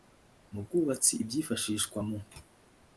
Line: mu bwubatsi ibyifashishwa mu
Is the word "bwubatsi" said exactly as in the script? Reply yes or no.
yes